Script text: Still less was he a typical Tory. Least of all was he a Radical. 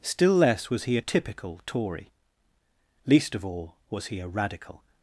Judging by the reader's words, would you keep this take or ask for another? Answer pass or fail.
pass